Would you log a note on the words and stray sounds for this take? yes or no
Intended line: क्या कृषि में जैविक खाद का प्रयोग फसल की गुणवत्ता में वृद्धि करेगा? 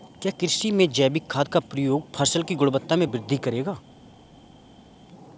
no